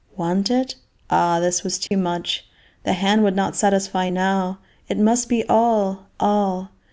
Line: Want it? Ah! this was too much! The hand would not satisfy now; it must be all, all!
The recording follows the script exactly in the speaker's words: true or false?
true